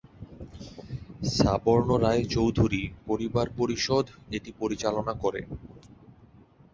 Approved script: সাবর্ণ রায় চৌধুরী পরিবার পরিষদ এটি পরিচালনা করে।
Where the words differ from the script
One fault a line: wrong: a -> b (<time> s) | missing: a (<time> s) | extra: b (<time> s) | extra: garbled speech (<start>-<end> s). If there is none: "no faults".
no faults